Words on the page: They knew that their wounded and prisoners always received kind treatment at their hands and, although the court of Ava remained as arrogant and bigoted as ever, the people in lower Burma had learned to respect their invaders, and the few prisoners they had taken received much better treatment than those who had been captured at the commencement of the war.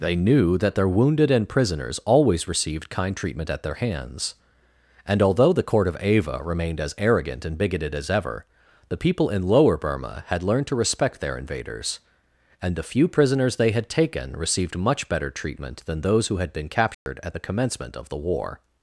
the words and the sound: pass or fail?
fail